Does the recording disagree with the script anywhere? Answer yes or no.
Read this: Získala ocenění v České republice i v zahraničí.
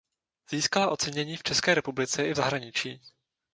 no